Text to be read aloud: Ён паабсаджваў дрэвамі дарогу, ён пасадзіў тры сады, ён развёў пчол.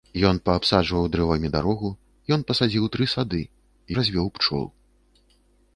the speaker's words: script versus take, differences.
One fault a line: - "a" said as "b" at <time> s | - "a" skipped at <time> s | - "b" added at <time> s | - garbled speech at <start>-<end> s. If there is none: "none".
- "ён" skipped at 3.4 s